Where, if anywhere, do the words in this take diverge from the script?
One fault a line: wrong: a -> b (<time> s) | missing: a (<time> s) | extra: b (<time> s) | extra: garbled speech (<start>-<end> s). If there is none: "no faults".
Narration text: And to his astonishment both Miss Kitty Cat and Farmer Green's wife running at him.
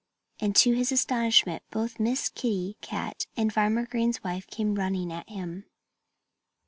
extra: came (4.5 s)